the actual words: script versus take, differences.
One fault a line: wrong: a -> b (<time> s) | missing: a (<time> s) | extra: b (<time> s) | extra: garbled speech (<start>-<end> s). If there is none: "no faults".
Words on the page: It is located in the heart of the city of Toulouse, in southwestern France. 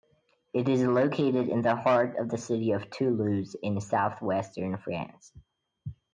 no faults